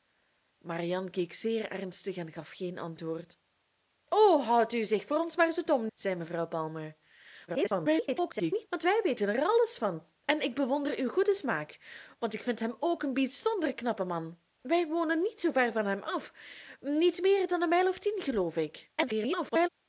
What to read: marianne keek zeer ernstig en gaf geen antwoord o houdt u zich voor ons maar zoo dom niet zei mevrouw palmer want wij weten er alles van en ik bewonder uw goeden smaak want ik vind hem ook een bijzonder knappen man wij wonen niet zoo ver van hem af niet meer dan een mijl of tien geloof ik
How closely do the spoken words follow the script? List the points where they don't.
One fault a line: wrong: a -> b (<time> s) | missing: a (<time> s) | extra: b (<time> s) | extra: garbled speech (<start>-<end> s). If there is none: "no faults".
missing: niet (5.9 s)
extra: garbled speech (7.5-8.7 s)
extra: garbled speech (19.0-19.7 s)